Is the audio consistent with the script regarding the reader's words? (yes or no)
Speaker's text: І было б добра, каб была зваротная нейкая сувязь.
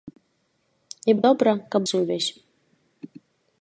no